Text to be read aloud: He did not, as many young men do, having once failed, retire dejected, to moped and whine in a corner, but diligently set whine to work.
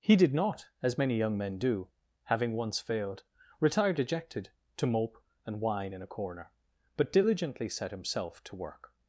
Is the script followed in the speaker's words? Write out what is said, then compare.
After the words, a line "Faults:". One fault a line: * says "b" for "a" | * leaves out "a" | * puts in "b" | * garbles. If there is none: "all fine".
He did not, as many young men do, having once failed, retire dejected, to mope and whine in a corner, but diligently set himself to work.
Faults:
* says "mope" for "moped"
* says "himself" for "whine"